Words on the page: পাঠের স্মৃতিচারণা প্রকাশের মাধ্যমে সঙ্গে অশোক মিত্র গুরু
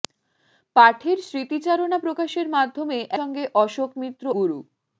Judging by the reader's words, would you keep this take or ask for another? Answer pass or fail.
pass